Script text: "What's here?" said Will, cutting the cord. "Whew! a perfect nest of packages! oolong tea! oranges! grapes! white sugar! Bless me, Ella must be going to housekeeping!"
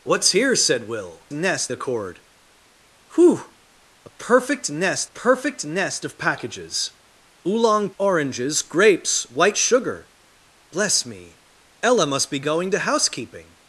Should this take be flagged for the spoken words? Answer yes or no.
yes